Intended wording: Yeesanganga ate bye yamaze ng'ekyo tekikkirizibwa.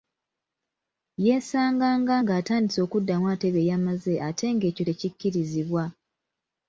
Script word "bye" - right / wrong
right